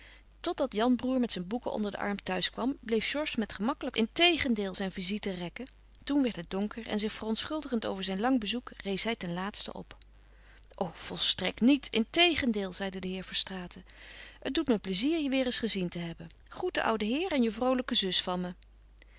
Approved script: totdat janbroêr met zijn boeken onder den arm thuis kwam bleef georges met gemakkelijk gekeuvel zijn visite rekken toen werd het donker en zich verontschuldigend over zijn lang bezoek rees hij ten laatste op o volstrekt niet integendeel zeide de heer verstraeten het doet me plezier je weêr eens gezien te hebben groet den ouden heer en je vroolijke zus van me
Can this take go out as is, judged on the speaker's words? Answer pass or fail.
fail